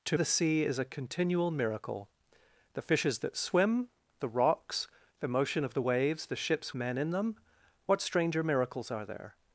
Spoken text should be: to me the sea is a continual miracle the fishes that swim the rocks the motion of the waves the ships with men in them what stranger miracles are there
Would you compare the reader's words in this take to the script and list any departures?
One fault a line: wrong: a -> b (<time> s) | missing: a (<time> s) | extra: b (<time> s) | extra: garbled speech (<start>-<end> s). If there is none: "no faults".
missing: me (0.2 s)
missing: with (6.7 s)